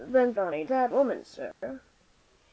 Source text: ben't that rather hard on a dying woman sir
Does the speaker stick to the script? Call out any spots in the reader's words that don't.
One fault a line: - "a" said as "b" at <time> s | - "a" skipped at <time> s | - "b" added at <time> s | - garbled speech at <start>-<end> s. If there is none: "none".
- "that rather hard" skipped at 0.4 s
- "dying" said as "that" at 0.7 s